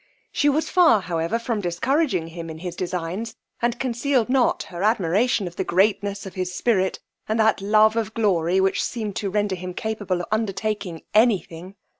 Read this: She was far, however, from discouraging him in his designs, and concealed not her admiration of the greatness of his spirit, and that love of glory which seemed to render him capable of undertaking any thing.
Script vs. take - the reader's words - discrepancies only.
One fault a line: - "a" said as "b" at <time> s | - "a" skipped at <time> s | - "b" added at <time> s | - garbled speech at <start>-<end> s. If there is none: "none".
none